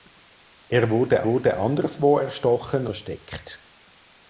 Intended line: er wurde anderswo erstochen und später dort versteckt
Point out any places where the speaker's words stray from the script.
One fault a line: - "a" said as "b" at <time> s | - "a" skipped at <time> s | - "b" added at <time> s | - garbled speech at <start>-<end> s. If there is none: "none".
- "wurde" added at 1.2 s
- "und später dort" skipped at 2.9 s